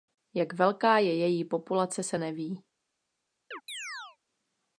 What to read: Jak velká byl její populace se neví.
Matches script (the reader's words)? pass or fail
fail